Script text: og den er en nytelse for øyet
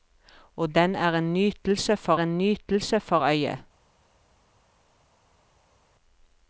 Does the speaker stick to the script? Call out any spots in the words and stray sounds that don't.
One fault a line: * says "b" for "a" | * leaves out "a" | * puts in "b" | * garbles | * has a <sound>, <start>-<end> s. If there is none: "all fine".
* puts in "en nytelse for"